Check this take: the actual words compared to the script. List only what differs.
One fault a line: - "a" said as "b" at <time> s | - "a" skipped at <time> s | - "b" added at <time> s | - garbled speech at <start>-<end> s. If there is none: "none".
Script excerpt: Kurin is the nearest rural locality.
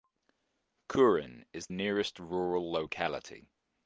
- "the" skipped at 1.7 s